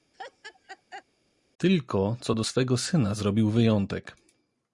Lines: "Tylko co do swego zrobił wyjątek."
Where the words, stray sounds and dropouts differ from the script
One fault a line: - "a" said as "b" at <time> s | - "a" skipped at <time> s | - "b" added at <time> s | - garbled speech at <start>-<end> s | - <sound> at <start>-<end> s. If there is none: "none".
- laugh at 0.1-1.0 s
- "syna" added at 2.8 s